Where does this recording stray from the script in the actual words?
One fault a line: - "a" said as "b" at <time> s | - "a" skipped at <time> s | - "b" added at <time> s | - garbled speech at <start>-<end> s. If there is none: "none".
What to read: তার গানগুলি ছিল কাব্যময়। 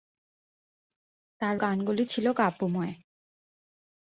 none